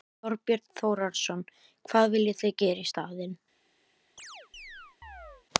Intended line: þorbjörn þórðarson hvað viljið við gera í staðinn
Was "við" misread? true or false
true